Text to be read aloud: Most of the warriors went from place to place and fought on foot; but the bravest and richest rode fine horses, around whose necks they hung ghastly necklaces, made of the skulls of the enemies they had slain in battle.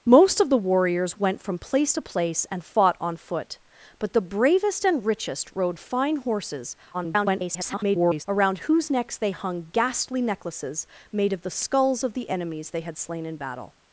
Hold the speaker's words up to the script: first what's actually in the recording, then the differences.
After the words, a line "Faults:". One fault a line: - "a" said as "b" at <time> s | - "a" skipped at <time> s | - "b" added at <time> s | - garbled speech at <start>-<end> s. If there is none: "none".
Most of the warriors went from place to place and fought on foot; but the bravest and richest rode fine horses, [garbled] around whose necks they hung ghastly necklaces, made of the skulls of the enemies they had slain in battle.
Faults:
- garbled speech at 6.9-8.2 s